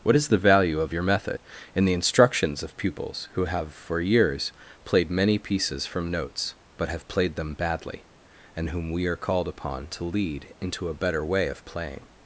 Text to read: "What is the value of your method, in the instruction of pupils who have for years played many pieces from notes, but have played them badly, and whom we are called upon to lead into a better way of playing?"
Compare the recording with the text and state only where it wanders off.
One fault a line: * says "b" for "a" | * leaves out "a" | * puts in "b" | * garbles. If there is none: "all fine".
* says "instructions" for "instruction"